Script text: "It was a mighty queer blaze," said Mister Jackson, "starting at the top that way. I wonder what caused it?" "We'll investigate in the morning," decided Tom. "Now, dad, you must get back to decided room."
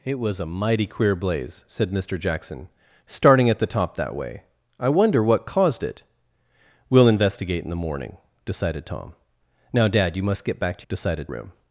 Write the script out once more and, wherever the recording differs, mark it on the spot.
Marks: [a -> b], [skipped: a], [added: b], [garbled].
"It was a mighty queer blaze," said Mister Jackson, "starting at the top that way. I wonder what caused it?" "We'll investigate in the morning," decided Tom. "Now, dad, you must get back to decided room."